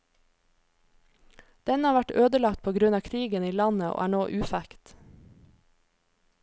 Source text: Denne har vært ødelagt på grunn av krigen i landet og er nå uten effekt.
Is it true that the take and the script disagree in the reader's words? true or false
true